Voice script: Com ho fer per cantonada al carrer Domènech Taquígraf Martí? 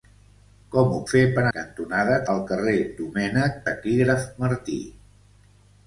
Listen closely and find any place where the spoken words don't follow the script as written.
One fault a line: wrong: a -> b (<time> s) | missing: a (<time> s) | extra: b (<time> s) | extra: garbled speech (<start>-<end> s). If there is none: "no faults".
no faults